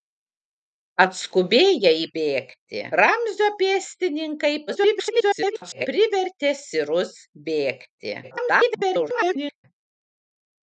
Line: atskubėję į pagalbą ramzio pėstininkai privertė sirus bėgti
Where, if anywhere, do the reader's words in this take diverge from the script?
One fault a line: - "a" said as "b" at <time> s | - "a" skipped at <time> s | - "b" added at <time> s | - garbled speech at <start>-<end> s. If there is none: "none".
- "pagalbą" said as "bėgti" at 2.2 s
- garbled speech at 4.7-5.9 s
- garbled speech at 8.2-9.6 s